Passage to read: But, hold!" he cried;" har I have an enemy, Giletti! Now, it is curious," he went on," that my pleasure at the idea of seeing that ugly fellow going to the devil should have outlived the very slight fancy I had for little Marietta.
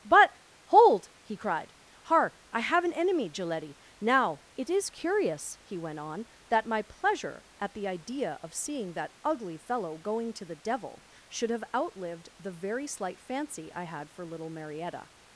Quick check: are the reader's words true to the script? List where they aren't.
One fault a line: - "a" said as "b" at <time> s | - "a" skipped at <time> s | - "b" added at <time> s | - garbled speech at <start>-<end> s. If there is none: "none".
none